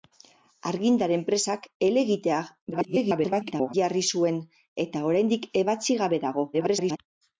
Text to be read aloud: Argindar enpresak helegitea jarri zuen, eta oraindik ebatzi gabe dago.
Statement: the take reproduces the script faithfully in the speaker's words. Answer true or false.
false